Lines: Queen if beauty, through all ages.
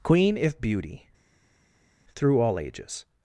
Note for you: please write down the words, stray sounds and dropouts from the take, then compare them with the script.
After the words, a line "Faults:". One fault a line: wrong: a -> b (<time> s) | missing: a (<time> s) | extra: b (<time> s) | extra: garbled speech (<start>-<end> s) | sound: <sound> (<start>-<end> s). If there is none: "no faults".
Queen if beauty, through all ages.
Faults:
no faults